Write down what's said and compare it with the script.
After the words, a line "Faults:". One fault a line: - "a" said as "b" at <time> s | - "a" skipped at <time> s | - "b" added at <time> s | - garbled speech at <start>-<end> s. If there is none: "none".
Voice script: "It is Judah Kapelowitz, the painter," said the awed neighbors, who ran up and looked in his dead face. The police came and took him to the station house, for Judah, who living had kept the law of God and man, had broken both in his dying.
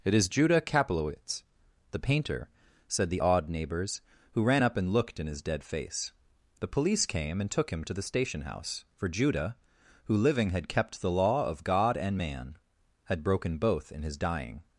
"It is Judah Kapelowitz, the painter," said the awed neighbors, who ran up and looked in his dead face. The police came and took him to the station house, for Judah, who living had kept the law of God and man, had broken both in his dying.
Faults:
none